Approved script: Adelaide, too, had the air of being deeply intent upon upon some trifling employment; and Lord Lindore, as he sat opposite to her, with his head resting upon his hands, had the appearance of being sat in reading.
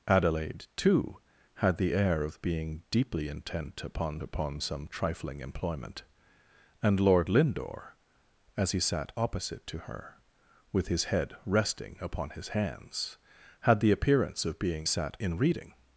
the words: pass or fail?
pass